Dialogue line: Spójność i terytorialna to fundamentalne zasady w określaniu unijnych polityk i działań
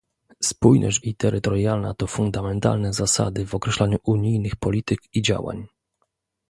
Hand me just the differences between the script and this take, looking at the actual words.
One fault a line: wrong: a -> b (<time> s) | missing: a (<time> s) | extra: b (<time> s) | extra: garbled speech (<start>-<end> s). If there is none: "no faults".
no faults